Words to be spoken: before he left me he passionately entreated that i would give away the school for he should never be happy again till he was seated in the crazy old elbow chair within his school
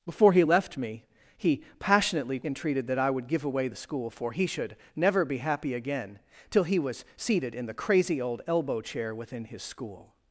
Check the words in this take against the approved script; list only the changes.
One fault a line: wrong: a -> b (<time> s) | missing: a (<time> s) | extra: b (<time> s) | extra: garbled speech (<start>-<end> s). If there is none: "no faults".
no faults